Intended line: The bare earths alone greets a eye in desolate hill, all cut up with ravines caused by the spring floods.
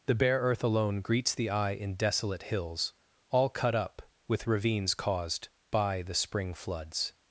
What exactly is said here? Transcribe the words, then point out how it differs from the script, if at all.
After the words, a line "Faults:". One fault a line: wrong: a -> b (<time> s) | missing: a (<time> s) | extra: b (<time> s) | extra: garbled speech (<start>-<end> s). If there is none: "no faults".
The bare earth alone greets the eye in desolate hills, all cut up with ravines caused by the spring floods.
Faults:
wrong: earths -> earth (0.4 s)
wrong: a -> the (1.4 s)
wrong: hill -> hills (2.4 s)